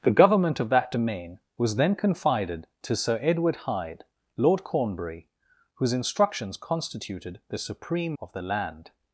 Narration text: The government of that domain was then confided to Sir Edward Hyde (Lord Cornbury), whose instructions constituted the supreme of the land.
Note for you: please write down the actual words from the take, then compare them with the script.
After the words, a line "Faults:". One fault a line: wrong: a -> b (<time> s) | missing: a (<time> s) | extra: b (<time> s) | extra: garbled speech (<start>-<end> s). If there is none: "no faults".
The government of that domain was then confided to Sir Edward Hyde (Lord Cornbury), whose instructions constituted the supreme of the land.
Faults:
no faults